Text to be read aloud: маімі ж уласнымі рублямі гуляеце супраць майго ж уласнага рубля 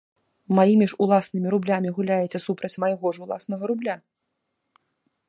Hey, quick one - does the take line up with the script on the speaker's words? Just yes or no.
yes